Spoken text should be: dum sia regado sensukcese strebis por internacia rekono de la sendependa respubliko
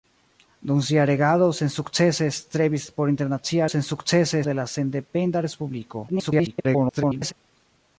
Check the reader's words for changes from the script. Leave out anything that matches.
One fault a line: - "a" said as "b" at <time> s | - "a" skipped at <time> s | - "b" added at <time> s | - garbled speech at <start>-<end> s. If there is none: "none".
- "rekono" said as "sensukcese" at 3.7 s
- garbled speech at 6.1-7.3 s